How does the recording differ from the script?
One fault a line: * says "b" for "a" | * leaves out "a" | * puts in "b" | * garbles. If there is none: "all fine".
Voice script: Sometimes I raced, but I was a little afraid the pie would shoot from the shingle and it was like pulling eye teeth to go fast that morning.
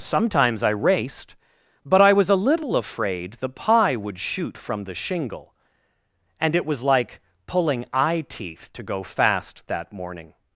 all fine